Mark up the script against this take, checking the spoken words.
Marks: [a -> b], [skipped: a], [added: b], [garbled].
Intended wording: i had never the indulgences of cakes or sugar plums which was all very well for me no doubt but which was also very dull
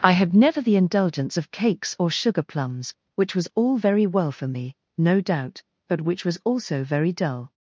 i had never the [indulgences -> indulgence] of cakes or sugar plums which was all very well for me no doubt but which was also very dull